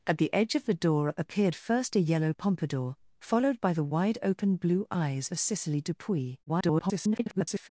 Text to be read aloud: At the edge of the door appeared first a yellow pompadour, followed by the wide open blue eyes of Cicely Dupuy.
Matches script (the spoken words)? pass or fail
fail